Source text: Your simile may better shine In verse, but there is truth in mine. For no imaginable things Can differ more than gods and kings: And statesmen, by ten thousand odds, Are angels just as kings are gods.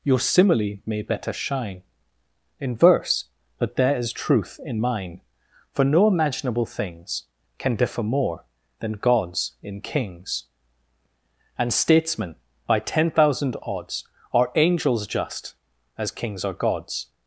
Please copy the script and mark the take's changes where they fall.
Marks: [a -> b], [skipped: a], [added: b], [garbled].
Your simile may better shine In verse, but there is truth in mine. For no imaginable things Can differ more than gods [and -> in] kings: And statesmen, by ten thousand odds, Are angels just as kings are gods.